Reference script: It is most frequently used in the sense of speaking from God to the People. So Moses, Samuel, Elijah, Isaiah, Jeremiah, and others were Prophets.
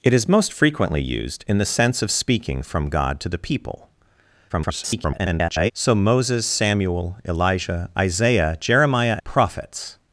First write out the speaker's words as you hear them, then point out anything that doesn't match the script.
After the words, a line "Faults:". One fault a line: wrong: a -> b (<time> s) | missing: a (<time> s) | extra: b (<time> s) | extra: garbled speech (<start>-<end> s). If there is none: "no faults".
It is most frequently used in the sense of speaking from God to the People. [garbled] So Moses, Samuel, Elijah, Isaiah, Jeremiah, Prophets.
Faults:
extra: garbled speech (4.5-5.7 s)
missing: and others were (9.2 s)